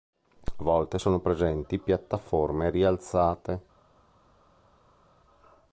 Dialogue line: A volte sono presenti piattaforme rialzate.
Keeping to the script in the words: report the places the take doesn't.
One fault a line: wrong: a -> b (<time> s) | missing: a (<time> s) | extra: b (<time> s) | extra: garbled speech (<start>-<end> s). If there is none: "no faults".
no faults